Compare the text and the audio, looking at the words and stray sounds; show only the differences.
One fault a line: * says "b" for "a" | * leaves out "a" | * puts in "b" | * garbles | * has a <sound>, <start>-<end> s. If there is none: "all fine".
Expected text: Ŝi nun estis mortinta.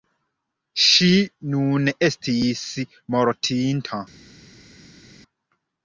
all fine